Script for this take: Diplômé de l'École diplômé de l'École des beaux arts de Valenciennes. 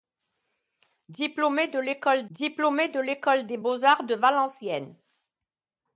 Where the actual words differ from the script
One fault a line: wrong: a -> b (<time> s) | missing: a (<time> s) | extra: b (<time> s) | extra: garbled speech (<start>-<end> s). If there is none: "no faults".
no faults